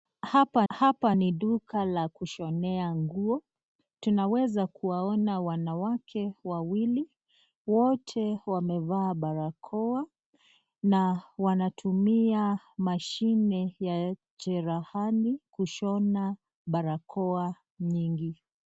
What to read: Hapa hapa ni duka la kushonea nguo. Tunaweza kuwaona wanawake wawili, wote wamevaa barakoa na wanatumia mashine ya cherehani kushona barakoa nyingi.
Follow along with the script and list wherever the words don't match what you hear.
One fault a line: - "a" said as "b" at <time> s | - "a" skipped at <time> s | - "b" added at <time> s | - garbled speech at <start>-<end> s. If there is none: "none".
none